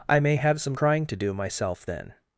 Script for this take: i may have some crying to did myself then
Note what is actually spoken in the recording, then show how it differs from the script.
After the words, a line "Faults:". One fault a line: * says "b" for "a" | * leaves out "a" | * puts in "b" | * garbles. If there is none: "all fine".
i may have some crying to do myself then
Faults:
* says "do" for "did"